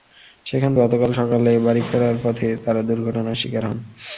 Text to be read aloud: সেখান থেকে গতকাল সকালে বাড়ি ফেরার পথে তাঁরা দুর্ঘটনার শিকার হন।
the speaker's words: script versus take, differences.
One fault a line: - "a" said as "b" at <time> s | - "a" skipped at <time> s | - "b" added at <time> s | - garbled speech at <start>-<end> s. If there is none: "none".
- "থেকে" skipped at 0.7 s